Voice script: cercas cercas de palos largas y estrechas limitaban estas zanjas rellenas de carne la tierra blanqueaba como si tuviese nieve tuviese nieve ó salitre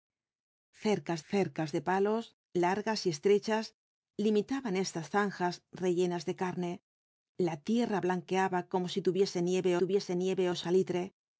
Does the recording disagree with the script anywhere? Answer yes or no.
no